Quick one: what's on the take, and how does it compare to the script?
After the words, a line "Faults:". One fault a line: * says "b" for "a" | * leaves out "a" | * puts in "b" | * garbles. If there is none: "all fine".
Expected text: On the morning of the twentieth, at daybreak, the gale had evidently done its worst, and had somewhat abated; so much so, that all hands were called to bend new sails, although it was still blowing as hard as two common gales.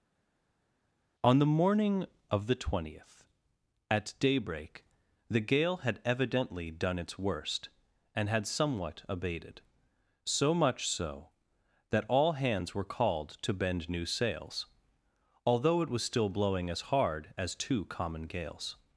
On the morning of the twentieth, at daybreak, the gale had evidently done its worst, and had somewhat abated; so much so, that all hands were called to bend new sails, although it was still blowing as hard as two common gales.
Faults:
all fine